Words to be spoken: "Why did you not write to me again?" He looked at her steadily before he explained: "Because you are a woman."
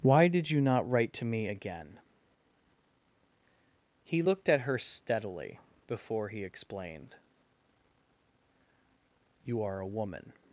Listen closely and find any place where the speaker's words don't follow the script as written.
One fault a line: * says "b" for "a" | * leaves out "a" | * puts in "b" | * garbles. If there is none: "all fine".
* leaves out "Because"